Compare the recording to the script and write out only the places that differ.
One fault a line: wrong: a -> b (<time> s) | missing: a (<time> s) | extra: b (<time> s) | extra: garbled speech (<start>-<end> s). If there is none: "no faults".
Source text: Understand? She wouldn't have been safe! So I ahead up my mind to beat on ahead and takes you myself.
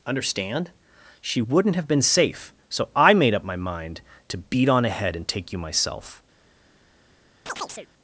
wrong: ahead -> made (3.1 s)
wrong: takes -> take (5.3 s)